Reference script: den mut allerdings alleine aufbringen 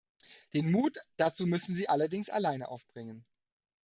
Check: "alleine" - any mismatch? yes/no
no